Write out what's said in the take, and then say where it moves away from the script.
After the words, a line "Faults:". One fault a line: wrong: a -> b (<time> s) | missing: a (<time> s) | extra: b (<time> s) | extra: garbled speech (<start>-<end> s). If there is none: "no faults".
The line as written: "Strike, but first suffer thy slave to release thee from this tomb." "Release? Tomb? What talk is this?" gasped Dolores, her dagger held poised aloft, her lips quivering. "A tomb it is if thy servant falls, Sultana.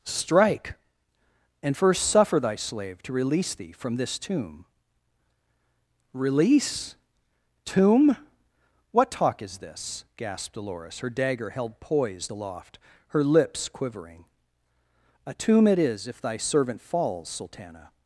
"Strike, and first suffer thy slave to release thee from this tomb." "Release? Tomb? What talk is this?" gasped Dolores, her dagger held poised aloft, her lips quivering. "A tomb it is if thy servant falls, Sultana.
Faults:
wrong: but -> and (1.6 s)